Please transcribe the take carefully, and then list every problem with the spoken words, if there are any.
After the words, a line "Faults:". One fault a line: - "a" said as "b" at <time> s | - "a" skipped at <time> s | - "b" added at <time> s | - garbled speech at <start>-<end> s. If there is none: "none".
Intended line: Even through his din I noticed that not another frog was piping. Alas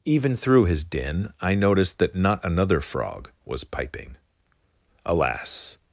Even through his din I noticed that not another frog was piping. Alas
Faults:
none